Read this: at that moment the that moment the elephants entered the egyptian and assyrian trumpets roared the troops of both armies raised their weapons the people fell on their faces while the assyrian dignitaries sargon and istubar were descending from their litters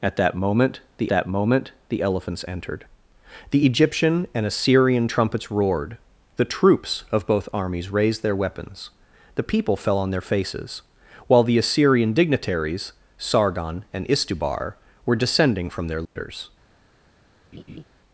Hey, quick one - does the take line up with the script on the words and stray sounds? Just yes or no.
no